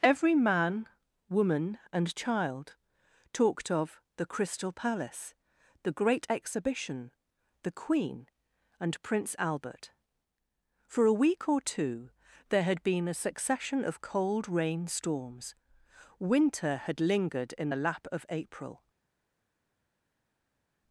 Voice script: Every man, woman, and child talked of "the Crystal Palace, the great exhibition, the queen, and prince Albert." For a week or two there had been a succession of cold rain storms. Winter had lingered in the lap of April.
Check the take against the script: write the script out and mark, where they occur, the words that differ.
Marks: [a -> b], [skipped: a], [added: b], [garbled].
Every man, woman, and child talked of "the Crystal Palace, the great exhibition, the queen, and prince Albert." For a week or two there had been a succession of cold rain storms. Winter had lingered in the lap of April.